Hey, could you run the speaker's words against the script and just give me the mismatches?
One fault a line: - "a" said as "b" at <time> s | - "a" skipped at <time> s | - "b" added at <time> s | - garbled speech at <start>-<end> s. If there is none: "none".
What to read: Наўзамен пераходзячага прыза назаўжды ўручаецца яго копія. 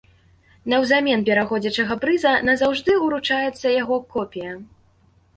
none